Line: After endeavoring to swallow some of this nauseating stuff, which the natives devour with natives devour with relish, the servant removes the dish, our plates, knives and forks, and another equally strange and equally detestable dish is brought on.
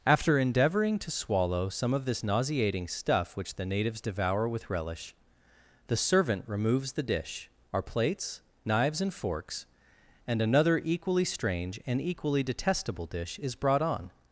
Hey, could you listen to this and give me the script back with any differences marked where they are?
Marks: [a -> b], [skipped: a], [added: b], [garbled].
After endeavoring to swallow some of this nauseating stuff, which the natives devour with [skipped: natives devour with] relish, the servant removes the dish, our plates, knives and forks, and another equally strange and equally detestable dish is brought on.